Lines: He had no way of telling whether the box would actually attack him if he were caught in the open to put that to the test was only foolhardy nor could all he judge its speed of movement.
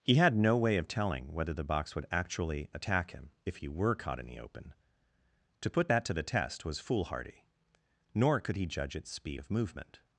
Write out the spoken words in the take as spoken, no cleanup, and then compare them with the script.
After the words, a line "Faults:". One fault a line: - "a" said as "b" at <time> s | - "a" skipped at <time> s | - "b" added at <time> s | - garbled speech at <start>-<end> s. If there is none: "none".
He had no way of telling whether the box would actually attack him if he were caught in the open to put that to the test was foolhardy nor could he judge its speed of movement.
Faults:
- "only" skipped at 6.8 s
- "all" skipped at 8.5 s